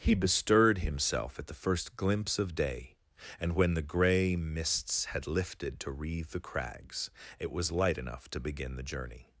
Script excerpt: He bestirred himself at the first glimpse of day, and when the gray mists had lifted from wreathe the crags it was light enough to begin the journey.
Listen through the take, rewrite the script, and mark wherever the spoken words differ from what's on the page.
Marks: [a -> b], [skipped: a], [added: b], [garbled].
He bestirred himself at the first glimpse of day, and when the gray mists had lifted [from -> to] wreathe the crags it was light enough to begin the journey.